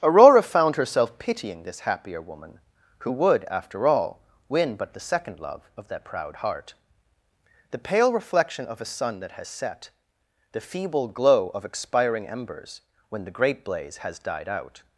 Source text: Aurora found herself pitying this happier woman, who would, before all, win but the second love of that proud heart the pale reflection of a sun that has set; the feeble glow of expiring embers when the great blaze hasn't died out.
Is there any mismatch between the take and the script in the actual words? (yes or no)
yes